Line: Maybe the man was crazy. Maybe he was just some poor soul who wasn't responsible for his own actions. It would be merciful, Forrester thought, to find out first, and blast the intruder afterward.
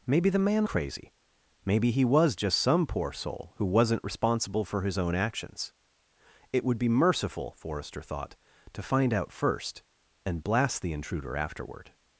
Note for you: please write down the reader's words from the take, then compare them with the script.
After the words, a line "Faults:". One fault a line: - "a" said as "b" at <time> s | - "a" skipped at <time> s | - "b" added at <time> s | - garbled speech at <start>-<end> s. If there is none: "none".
Maybe the man crazy. Maybe he was just some poor soul who wasn't responsible for his own actions. It would be merciful, Forrester thought, to find out first, and blast the intruder afterward.
Faults:
- "was" skipped at 0.7 s